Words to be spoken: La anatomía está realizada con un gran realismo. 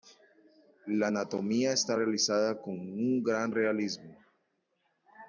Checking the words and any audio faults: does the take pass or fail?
pass